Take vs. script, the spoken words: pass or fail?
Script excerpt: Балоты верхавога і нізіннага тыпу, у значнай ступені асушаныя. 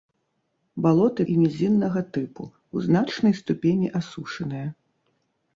fail